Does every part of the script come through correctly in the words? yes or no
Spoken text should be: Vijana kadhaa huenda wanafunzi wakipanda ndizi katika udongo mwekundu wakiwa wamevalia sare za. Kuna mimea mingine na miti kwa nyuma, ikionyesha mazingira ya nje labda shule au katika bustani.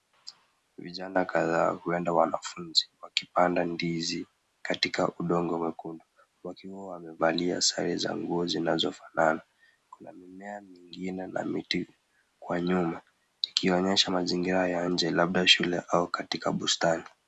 no